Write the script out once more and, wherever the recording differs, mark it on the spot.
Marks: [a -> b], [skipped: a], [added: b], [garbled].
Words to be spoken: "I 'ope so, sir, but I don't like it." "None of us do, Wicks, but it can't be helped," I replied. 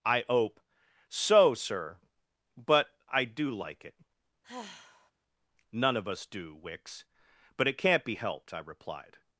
"I 'ope so, sir, but I [don't -> do] like it." "None of us do, Wicks, but it can't be helped," I replied.